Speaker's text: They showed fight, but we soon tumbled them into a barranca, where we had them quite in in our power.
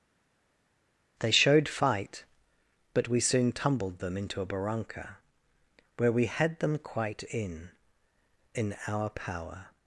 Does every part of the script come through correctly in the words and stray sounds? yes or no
yes